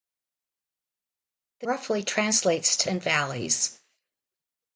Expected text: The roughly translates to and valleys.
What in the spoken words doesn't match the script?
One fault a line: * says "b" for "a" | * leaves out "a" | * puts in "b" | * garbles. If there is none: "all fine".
all fine